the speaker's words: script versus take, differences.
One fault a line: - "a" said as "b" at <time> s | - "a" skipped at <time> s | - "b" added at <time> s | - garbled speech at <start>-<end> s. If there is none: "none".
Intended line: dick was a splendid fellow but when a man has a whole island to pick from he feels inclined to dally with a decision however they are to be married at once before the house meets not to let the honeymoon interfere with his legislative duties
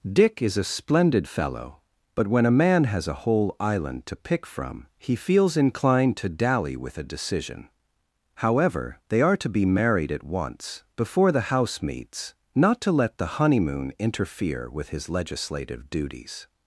- "was" said as "is" at 0.4 s